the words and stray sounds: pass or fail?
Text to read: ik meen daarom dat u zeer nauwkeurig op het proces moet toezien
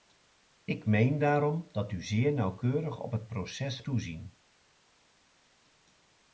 fail